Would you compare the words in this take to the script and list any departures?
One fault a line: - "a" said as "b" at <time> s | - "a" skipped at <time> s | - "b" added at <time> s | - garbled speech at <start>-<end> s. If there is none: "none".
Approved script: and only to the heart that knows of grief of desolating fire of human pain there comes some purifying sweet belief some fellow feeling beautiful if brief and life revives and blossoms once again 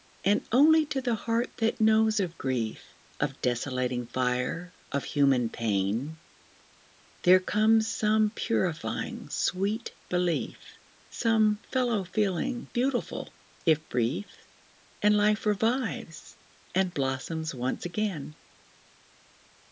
none